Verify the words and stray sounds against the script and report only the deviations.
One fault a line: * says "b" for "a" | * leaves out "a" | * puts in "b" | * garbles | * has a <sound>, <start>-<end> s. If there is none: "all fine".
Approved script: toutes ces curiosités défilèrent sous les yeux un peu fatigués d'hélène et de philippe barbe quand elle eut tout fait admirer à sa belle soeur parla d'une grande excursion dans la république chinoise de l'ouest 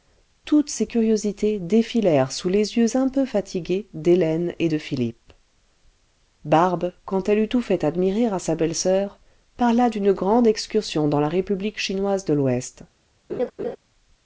* has a laugh, 13.3-13.8 s